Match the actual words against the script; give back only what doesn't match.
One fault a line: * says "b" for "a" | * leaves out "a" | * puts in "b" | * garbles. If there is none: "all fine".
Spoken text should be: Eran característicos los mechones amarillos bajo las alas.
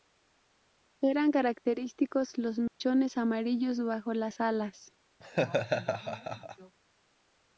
all fine